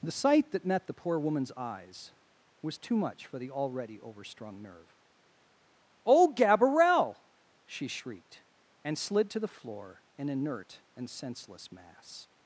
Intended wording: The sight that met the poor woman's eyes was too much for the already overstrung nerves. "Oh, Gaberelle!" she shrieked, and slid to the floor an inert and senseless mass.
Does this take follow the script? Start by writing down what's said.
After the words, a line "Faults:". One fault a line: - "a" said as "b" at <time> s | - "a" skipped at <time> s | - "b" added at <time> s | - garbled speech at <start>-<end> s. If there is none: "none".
The sight that met the poor woman's eyes was too much for the already overstrung nerve. "Oh, Gaberelle!" she shrieked, and slid to the floor an inert and senseless mass.
Faults:
- "nerves" said as "nerve" at 4.6 s